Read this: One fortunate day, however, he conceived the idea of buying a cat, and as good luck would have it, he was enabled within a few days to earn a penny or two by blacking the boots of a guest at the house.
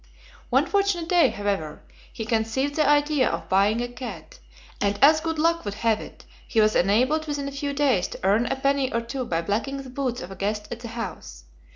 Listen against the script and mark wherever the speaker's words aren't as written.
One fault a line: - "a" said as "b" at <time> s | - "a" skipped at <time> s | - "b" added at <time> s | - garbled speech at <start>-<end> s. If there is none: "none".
none